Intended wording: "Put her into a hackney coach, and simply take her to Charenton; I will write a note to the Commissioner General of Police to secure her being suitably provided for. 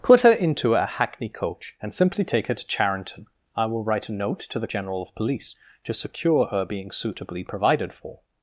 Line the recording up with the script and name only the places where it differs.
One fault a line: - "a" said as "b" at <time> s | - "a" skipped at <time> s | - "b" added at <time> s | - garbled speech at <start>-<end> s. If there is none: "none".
- "Commissioner" skipped at 4.7 s